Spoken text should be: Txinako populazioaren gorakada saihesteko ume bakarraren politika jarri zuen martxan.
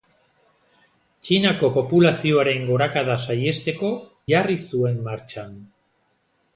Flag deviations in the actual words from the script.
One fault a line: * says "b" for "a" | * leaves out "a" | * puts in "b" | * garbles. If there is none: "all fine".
* leaves out "ume bakarraren politika"